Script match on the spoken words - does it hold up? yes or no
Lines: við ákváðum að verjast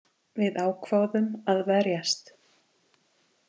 yes